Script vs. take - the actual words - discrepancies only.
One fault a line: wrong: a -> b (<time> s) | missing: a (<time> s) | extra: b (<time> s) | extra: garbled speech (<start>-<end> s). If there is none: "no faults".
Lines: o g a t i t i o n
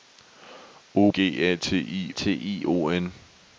no faults